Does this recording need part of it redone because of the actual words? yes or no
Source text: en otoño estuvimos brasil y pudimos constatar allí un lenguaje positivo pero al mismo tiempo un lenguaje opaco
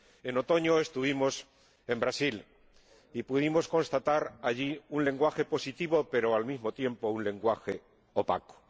yes